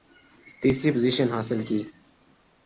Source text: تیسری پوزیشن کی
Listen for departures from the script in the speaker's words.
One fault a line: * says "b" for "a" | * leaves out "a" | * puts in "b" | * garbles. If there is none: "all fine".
* puts in "حاصل"